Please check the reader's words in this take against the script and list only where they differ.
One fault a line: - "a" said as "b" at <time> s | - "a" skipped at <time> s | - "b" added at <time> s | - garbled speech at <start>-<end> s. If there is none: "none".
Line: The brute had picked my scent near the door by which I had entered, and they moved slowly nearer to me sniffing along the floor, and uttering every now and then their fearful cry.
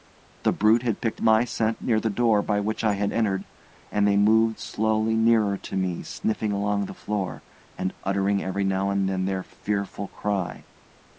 none